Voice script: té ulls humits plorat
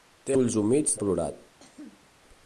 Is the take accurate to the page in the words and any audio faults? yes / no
no